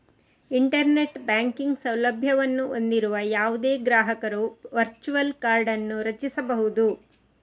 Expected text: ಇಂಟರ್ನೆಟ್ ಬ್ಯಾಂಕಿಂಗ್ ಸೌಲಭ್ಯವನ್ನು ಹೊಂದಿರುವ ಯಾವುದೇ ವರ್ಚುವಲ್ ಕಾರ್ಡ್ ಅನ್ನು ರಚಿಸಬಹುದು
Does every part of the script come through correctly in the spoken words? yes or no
no